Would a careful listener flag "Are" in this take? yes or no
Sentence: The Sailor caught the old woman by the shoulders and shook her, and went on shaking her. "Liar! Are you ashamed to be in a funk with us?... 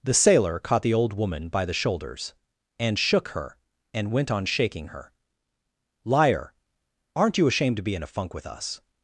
yes